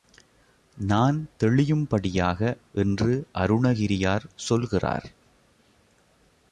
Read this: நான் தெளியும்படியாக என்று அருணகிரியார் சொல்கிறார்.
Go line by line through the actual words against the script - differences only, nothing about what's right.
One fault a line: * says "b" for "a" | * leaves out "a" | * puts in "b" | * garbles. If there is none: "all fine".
all fine